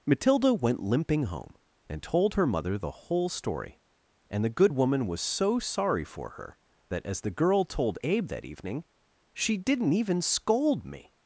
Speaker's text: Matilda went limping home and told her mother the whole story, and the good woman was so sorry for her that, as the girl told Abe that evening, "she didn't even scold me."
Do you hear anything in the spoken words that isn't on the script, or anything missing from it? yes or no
no